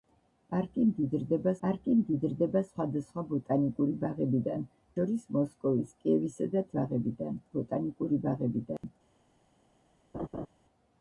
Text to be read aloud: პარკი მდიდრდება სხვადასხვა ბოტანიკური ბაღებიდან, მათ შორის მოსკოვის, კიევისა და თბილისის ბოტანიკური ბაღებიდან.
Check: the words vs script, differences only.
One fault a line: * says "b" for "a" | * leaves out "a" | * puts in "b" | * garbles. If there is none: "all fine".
* puts in "პარკი მდიდრდება"
* leaves out "მათ"
* says "ბაღებიდან" for "თბილისის"